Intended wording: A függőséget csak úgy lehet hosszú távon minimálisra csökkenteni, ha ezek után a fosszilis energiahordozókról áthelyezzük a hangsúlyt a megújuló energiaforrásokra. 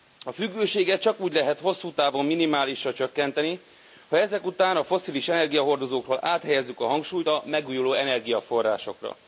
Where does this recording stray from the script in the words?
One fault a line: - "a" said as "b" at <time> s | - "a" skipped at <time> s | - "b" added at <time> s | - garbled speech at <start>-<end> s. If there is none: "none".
none